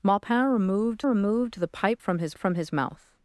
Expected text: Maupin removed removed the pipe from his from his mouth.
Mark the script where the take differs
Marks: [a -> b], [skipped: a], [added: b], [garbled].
Maupin removed removed the pipe from his from his mouth.